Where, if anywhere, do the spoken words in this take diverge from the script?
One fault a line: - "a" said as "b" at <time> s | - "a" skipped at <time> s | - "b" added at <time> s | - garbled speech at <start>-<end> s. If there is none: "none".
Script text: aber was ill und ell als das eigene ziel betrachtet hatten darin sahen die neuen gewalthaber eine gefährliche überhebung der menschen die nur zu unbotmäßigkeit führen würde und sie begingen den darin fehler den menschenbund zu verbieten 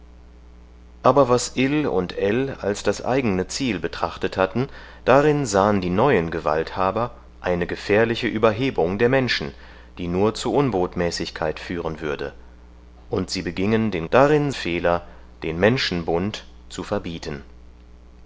none